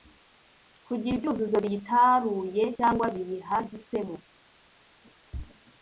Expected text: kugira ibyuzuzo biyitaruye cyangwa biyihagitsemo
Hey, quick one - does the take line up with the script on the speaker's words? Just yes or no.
yes